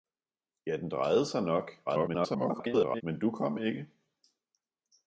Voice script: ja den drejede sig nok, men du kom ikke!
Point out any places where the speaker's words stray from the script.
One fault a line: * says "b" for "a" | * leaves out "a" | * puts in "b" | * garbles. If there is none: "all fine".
* garbles